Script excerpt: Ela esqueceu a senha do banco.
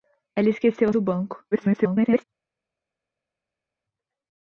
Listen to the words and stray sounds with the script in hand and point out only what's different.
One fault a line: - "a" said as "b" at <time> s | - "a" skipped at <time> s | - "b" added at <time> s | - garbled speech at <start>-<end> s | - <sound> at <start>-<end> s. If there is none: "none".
- "senha" skipped at 0.9 s
- garbled speech at 1.5-2.2 s